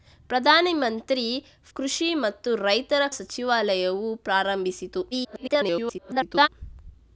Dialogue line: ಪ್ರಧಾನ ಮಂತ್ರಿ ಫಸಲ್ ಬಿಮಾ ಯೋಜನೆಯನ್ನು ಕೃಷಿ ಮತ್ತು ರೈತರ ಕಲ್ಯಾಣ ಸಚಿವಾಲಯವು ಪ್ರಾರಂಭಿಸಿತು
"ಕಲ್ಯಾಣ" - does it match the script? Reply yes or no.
no